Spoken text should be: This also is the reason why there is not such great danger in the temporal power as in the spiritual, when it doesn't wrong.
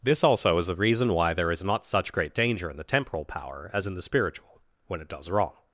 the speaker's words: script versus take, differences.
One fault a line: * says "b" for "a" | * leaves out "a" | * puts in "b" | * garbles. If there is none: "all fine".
* says "does" for "doesn't"